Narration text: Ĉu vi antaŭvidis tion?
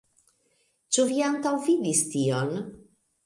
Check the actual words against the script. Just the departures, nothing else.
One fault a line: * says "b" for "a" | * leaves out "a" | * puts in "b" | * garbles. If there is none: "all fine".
all fine